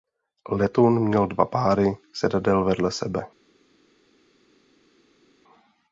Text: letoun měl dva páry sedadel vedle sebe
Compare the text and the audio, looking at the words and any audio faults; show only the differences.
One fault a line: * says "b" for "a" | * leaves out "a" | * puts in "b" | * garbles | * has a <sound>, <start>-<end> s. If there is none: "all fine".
all fine